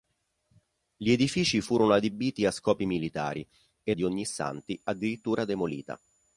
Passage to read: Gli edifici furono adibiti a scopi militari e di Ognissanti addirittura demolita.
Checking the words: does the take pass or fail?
pass